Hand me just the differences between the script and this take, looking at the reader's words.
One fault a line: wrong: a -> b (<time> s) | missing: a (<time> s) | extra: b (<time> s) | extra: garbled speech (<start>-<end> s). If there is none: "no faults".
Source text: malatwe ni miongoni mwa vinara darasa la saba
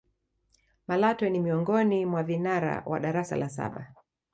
extra: wa (2.9 s)